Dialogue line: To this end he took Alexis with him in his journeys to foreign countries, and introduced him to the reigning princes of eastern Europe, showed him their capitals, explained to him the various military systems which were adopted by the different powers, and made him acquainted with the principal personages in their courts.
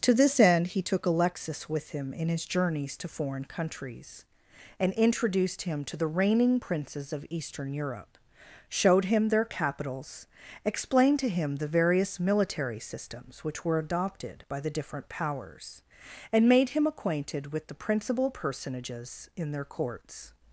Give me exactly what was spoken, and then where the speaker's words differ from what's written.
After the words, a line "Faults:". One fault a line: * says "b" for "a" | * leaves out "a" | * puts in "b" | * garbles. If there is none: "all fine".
To this end he took Alexis with him in his journeys to foreign countries, and introduced him to the reigning princes of eastern Europe, showed him their capitals, explained to him the various military systems which were adopted by the different powers, and made him acquainted with the principal personages in their courts.
Faults:
all fine